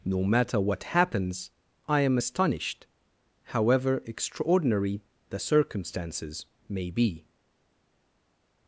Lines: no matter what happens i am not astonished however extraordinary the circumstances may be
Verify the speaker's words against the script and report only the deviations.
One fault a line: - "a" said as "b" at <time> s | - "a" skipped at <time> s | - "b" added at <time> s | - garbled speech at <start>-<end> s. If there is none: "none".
- "not" skipped at 2.2 s